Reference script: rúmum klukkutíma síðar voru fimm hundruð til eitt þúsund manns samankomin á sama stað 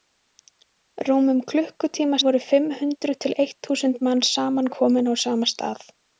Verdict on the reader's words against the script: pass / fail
fail